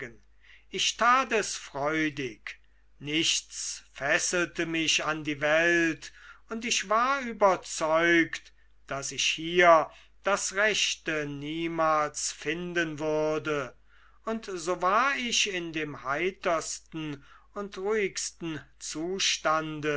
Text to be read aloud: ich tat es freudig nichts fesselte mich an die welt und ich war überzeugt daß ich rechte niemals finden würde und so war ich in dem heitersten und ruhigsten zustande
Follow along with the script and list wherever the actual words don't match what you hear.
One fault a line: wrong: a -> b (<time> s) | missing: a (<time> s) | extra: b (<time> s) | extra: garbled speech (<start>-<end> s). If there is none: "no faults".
extra: hier das (9.2 s)